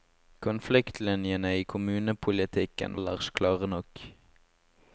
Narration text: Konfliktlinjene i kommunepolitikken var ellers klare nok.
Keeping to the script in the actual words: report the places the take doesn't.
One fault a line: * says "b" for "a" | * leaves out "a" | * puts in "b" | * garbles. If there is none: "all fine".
* leaves out "var"